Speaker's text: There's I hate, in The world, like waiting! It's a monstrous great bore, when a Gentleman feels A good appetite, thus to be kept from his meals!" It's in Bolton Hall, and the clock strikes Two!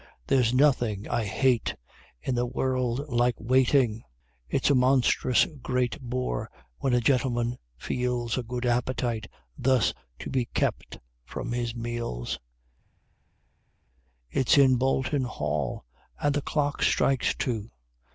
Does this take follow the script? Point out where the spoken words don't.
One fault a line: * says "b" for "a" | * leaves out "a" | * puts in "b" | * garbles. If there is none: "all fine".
* puts in "nothing"